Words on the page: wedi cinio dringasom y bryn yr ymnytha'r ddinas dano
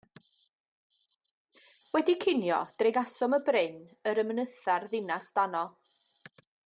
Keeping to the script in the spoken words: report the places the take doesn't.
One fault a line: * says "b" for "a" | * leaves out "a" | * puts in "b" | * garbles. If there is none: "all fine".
all fine